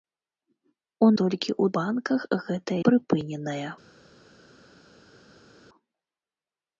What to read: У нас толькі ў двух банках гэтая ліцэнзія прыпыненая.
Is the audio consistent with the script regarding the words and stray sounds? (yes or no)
no